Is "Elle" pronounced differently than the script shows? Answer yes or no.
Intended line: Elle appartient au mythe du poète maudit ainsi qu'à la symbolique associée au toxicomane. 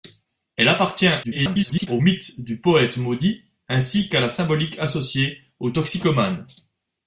no